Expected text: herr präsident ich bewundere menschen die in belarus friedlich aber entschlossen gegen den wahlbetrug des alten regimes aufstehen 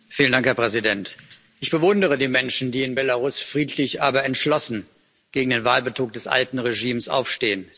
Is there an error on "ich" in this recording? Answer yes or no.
no